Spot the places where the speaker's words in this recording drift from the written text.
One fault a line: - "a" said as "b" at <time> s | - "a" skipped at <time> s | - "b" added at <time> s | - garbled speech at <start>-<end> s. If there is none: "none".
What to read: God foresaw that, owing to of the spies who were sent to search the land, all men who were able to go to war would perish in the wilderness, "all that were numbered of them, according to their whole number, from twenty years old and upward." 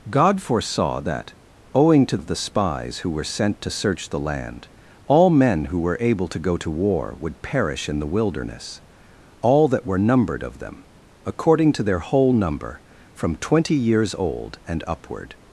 none